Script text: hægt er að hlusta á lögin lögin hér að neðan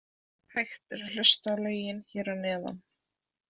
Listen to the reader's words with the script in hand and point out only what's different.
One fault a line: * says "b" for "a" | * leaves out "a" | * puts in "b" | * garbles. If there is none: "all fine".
* leaves out "lögin"